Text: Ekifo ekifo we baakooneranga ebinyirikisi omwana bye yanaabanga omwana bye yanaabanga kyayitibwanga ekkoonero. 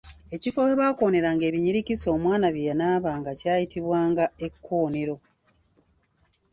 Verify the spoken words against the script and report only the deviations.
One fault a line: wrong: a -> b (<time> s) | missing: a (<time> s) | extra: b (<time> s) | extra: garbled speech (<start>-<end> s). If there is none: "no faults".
missing: ekifo (0.6 s)
missing: omwana bye yanaabanga (3.3 s)